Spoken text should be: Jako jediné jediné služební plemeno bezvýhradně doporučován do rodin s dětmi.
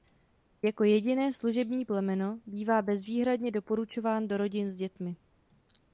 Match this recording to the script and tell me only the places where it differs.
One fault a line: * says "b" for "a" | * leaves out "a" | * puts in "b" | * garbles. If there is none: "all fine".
* leaves out "jediné"
* puts in "bývá"